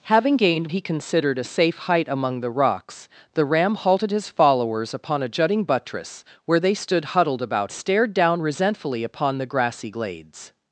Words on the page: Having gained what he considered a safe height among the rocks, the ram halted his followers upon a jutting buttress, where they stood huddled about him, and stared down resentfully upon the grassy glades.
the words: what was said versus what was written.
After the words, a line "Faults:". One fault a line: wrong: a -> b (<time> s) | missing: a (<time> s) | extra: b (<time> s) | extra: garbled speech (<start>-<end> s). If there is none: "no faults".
Having gained he considered a safe height among the rocks, the ram halted his followers upon a jutting buttress, where they stood huddled about stared down resentfully upon the grassy glades.
Faults:
missing: what (0.7 s)
missing: him and (7.7 s)